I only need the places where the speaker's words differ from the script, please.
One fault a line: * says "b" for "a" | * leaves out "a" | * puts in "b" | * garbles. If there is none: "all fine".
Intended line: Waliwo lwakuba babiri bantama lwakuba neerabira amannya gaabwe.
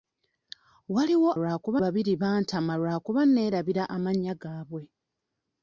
all fine